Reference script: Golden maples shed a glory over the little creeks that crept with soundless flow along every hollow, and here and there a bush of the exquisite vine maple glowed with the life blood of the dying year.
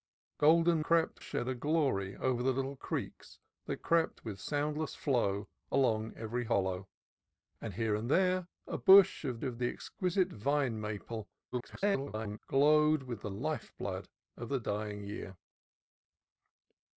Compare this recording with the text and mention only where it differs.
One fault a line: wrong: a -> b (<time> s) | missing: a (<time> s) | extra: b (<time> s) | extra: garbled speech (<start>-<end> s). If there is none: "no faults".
wrong: maples -> crept (0.8 s)
extra: of (9.4 s)
extra: garbled speech (11.5-12.4 s)